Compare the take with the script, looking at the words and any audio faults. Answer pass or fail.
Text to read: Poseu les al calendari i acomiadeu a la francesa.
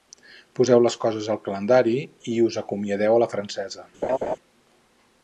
fail